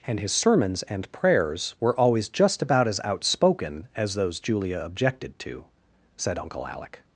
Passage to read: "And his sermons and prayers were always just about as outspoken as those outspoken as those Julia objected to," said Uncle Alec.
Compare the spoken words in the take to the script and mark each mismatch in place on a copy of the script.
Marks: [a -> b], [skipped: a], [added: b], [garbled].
"And his sermons and prayers were always just about as outspoken as those [skipped: outspoken as those] Julia objected to," said Uncle Alec.